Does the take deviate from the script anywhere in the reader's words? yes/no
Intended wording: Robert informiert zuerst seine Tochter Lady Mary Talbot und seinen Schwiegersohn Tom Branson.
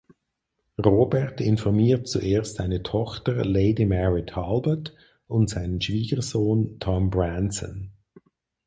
no